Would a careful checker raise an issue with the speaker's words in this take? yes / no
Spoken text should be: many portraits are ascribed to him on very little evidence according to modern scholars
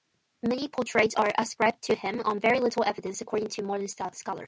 no